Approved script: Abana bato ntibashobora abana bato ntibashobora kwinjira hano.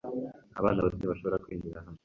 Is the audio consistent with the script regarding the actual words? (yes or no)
no